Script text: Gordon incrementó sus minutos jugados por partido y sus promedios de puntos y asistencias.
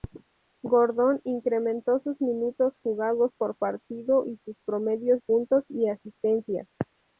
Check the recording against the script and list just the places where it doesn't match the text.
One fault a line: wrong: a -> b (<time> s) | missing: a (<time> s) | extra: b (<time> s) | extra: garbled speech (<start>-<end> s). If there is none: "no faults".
missing: de (5.2 s)